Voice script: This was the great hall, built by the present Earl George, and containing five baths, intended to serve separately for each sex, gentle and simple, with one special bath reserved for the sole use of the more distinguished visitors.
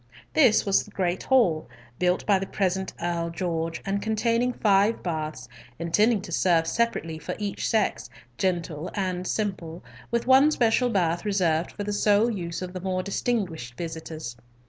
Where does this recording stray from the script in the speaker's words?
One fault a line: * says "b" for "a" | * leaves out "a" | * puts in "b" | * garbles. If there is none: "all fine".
all fine